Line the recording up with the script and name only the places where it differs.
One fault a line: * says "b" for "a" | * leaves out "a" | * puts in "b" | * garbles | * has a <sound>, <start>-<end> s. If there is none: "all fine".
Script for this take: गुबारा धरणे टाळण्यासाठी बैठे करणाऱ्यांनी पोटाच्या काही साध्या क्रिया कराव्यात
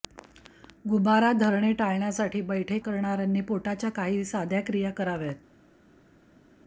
all fine